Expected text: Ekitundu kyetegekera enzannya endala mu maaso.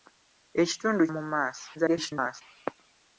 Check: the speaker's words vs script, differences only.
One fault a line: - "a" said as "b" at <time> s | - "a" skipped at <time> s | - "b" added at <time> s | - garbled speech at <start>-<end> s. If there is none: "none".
- "kyetegekera enzannya endala" skipped at 1.0 s
- garbled speech at 1.7-2.4 s